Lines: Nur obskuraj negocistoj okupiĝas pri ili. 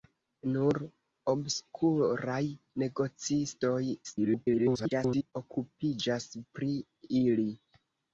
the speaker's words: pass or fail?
fail